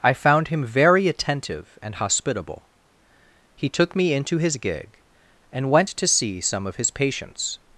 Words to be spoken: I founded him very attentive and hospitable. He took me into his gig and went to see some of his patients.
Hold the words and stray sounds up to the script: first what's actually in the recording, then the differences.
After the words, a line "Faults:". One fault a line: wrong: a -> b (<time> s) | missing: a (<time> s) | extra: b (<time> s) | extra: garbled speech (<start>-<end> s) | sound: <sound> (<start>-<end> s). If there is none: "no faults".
I found him very attentive and hospitable. He took me into his gig and went to see some of his patients.
Faults:
wrong: founded -> found (0.1 s)